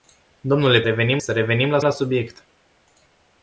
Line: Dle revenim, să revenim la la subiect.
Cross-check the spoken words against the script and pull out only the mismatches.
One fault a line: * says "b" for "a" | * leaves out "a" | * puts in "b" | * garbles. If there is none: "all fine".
all fine